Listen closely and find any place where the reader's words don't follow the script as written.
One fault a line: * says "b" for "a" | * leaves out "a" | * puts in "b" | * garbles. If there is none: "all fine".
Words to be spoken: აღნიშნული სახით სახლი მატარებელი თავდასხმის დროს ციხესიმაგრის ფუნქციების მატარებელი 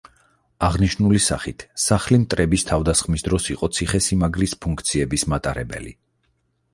* says "მტრების" for "მატარებელი"
* puts in "იყო"